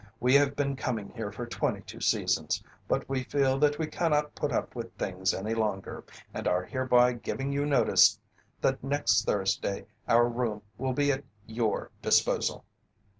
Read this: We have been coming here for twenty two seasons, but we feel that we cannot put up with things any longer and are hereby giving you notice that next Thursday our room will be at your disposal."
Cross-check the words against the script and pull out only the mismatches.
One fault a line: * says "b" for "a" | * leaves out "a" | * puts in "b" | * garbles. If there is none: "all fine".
all fine